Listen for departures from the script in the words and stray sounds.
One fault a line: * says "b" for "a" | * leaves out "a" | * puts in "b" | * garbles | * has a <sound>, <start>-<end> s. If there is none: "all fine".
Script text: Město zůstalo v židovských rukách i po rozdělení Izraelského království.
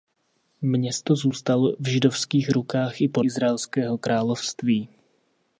* leaves out "rozdělení"